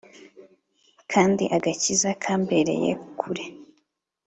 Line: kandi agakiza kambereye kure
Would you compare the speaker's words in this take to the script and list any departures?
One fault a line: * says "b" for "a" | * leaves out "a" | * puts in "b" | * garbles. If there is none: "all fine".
all fine